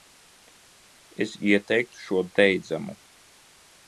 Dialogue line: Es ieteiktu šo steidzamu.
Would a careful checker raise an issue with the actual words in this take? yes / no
no